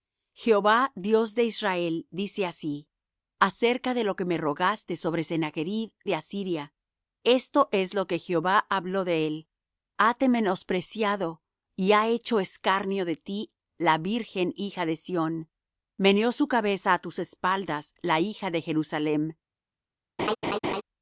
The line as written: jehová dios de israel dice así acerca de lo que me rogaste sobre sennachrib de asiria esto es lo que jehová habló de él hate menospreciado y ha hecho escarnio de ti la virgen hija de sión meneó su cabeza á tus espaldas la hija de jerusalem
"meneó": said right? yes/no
yes